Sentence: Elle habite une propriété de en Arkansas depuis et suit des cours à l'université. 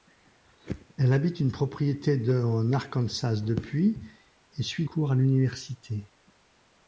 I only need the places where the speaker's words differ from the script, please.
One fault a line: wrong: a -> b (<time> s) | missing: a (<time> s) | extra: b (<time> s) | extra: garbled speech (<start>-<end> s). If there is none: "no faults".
missing: des (4.9 s)